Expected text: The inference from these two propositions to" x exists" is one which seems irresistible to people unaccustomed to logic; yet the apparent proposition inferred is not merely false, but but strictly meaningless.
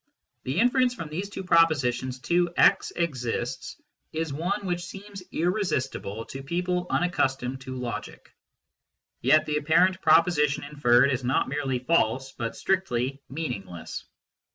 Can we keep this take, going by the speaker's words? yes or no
no